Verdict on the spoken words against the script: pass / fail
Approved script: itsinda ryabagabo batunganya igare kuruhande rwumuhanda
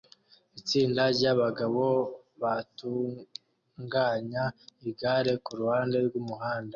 pass